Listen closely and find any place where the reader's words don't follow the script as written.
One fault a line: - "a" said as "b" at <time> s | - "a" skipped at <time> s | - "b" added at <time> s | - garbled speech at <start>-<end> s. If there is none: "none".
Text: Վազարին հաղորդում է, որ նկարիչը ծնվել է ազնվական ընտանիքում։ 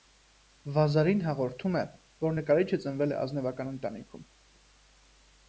none